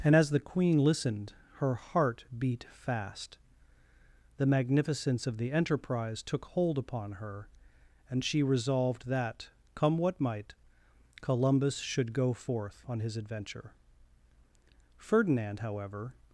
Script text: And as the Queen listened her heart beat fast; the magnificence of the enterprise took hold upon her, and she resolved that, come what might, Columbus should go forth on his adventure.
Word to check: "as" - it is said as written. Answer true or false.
true